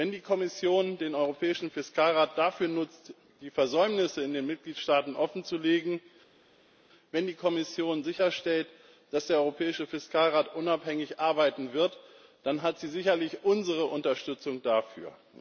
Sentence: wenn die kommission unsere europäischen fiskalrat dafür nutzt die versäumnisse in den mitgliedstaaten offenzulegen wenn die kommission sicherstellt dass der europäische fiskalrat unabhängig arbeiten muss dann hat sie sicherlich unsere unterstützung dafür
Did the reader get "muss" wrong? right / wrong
wrong